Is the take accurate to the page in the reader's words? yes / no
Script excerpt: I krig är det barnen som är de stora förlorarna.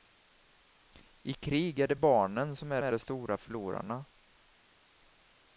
no